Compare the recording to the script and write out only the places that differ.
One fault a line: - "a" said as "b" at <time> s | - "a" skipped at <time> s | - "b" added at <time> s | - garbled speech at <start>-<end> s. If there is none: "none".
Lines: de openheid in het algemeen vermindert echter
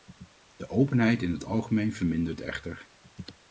none